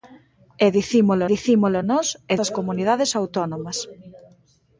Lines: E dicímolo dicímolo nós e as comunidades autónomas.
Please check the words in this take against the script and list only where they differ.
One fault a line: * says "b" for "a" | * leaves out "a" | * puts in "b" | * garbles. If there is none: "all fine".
all fine